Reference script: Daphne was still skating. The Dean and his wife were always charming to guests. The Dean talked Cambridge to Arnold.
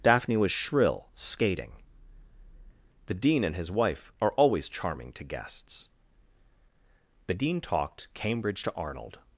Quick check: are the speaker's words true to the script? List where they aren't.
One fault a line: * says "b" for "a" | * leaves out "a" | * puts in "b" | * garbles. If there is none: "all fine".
* says "shrill" for "still"
* says "are" for "were"